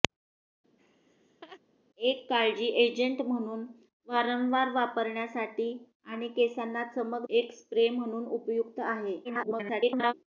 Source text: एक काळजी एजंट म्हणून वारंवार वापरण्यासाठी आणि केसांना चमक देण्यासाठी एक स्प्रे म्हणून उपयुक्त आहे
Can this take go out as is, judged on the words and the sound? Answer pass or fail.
fail